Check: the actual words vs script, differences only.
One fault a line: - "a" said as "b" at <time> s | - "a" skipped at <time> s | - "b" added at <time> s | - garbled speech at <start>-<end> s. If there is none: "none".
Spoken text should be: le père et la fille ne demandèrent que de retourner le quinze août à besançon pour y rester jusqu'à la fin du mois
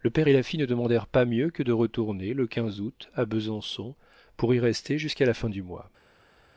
- "pas mieux" added at 1.1 s